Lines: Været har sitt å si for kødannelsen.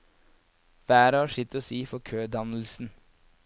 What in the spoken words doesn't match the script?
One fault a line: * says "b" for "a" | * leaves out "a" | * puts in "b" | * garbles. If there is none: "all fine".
all fine